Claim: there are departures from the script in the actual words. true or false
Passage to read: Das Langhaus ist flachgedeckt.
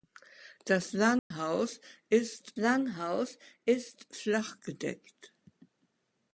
true